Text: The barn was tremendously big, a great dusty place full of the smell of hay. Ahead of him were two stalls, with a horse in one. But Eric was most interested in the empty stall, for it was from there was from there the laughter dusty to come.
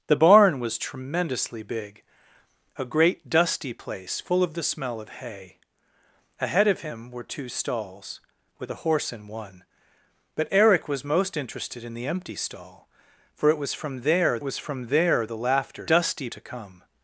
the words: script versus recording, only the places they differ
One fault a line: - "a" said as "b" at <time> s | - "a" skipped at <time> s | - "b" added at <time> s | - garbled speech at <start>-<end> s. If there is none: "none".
none